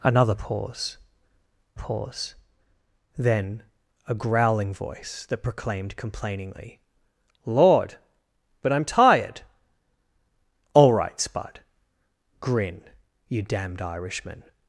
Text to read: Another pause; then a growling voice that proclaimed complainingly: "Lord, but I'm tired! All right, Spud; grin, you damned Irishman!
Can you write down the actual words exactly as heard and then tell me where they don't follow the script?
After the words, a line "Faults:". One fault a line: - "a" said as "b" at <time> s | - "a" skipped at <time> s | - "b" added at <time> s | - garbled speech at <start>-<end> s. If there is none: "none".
Another pause pause; then a growling voice that proclaimed complainingly: "Lord, but I'm tired! All right, Spud; grin, you damned Irishman!
Faults:
- "pause" added at 1.7 s